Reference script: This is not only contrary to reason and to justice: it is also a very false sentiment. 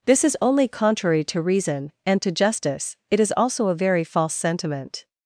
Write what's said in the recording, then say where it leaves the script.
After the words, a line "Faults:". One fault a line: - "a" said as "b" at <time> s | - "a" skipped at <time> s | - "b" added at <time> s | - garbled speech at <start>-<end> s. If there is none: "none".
This is only contrary to reason and to justice: it is also a very false sentiment.
Faults:
- "not" skipped at 0.3 s